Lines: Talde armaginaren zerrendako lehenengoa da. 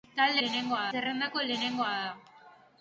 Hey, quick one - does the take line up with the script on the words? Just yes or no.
no